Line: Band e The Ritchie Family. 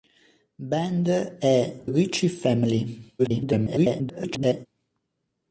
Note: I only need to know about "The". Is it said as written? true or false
false